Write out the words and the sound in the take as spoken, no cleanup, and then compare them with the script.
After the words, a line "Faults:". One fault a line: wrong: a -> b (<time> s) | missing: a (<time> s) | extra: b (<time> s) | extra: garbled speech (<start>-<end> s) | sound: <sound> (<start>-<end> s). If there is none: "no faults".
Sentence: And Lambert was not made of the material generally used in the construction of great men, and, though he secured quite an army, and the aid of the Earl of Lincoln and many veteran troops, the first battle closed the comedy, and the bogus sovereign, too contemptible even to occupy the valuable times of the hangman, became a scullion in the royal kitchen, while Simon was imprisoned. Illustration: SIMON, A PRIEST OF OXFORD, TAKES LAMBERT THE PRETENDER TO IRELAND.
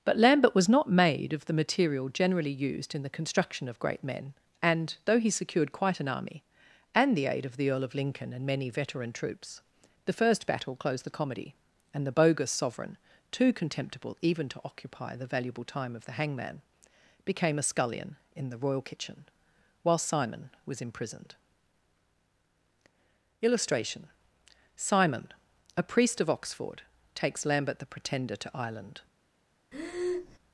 But Lambert was not made of the material generally used in the construction of great men, and, though he secured quite an army, and the aid of the Earl of Lincoln and many veteran troops, the first battle closed the comedy, and the bogus sovereign, too contemptible even to occupy the valuable time of the hangman, became a scullion in the royal kitchen, while Simon was imprisoned. Illustration: SIMON, A PRIEST OF OXFORD, TAKES LAMBERT THE PRETENDER TO IRELAND.
Faults:
wrong: And -> But (0.0 s)
wrong: times -> time (15.7 s)
sound: breath (29.7-30.4 s)